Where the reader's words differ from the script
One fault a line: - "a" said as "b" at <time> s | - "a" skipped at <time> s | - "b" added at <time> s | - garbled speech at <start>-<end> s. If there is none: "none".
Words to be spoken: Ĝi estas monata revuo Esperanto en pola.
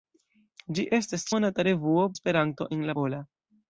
none